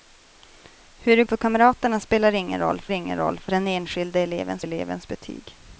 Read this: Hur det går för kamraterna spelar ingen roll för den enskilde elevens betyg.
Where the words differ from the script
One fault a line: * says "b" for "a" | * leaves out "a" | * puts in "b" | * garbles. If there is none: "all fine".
* leaves out "går"
* puts in "ingen roll för"
* puts in "elevens"